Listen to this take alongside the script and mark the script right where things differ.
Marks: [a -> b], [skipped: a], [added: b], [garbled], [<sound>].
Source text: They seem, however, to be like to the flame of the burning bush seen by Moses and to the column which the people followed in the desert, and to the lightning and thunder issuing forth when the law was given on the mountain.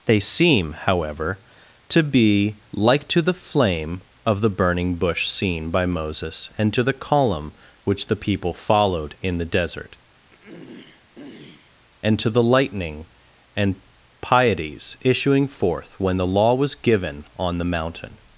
They seem, however, to be like to the flame of the burning bush seen by Moses and to the column which the people followed in the desert, [throat clearing] and to the lightning and [thunder -> pieties] issuing forth when the law was given on the mountain.